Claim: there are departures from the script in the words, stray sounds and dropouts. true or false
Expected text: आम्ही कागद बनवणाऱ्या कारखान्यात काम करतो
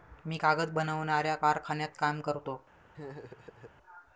true